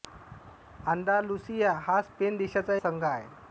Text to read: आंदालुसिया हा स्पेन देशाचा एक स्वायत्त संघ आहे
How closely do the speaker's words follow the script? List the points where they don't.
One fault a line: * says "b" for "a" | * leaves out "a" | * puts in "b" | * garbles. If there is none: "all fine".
* leaves out "एक स्वायत्त"